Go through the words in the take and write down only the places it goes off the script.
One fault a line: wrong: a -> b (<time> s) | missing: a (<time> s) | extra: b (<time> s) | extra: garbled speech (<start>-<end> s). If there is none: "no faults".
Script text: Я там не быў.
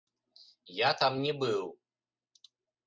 no faults